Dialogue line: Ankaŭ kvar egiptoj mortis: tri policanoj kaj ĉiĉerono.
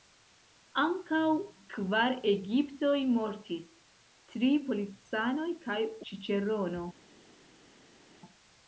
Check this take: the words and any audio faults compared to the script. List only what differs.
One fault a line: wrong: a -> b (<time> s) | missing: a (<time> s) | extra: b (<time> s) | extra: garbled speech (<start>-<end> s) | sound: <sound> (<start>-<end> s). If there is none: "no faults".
no faults